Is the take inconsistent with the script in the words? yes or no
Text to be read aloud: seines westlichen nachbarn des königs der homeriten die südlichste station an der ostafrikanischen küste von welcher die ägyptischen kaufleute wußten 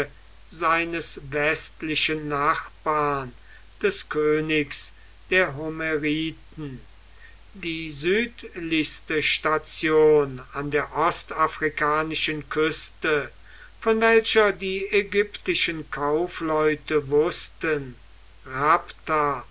no